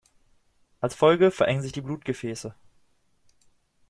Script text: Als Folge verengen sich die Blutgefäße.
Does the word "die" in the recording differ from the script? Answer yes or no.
no